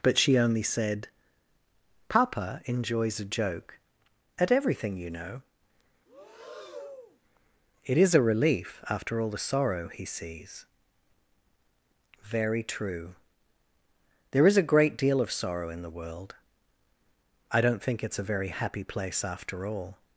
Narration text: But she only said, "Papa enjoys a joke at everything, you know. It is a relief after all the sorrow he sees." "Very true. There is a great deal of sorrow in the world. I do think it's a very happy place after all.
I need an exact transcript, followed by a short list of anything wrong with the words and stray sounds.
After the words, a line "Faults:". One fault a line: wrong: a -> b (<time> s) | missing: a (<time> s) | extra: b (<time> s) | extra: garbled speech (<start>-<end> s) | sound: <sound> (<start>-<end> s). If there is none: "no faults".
But she only said, "Papa enjoys a joke at everything, you know. It is a relief after all the sorrow he sees." "Very true. There is a great deal of sorrow in the world. I don't think it's a very happy place after all.
Faults:
sound: breath (6.1-7.2 s)
wrong: do -> don't (17.6 s)